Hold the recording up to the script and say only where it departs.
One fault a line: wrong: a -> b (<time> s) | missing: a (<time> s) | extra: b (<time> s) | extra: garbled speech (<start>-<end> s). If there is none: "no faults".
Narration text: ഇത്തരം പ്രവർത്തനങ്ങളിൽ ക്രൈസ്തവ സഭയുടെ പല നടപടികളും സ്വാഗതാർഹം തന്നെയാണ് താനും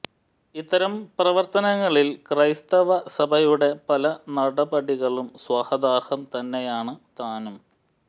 no faults